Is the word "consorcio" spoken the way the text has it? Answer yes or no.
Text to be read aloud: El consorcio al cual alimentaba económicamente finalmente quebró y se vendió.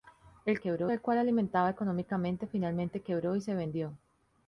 no